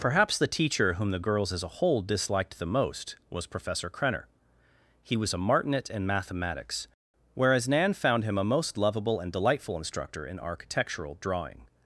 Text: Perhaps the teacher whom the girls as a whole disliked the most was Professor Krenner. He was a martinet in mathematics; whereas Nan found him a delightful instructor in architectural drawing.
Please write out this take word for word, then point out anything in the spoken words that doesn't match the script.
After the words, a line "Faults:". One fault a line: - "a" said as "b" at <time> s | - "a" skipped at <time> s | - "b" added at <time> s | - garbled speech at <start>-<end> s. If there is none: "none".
Perhaps the teacher whom the girls as a whole disliked the most was Professor Krenner. He was a martinet in mathematics; whereas Nan found him a most lovable and delightful instructor in architectural drawing.
Faults:
- "most lovable and" added at 8.5 s